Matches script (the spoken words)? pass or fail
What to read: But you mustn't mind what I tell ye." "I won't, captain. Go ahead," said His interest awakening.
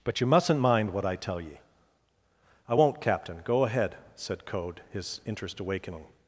fail